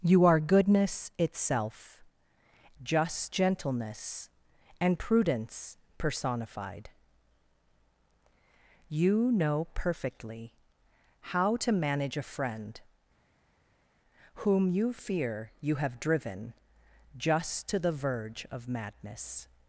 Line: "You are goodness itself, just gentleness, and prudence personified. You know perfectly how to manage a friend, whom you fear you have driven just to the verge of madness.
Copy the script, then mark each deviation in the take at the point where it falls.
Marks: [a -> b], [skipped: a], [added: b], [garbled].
"You are goodness itself, just gentleness, and prudence personified. You know perfectly how to manage a friend, whom you fear you have driven just to the verge of madness.